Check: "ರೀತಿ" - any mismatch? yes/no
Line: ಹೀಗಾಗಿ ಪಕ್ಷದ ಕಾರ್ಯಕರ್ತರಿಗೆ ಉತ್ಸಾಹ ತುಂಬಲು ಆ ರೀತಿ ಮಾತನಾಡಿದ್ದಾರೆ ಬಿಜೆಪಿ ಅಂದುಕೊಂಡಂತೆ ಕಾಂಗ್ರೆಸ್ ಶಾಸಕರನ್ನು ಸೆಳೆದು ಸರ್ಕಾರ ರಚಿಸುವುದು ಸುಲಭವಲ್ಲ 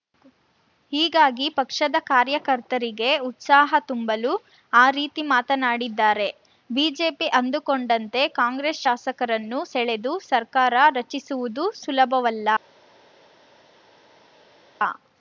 no